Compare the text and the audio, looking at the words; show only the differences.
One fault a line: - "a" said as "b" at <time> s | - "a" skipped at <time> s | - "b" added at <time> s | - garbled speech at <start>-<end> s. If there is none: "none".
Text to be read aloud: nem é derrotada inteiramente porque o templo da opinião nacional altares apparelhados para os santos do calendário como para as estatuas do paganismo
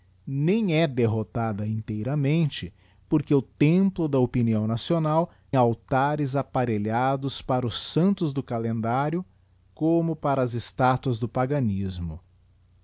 none